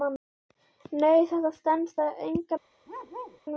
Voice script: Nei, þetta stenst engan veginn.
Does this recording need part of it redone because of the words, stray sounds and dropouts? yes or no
yes